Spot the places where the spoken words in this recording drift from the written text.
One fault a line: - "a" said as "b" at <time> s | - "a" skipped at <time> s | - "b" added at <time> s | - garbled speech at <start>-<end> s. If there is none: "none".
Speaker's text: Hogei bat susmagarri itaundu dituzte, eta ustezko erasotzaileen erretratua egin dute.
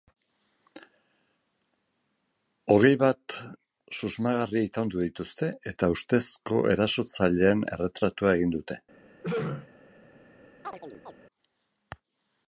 none